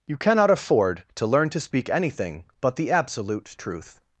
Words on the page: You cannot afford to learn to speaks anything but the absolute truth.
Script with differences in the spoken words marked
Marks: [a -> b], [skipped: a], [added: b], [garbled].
You cannot afford to learn to [speaks -> speak] anything but the absolute truth.